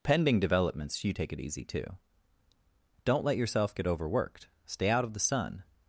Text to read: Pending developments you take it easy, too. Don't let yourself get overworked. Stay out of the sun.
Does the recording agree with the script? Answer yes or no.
yes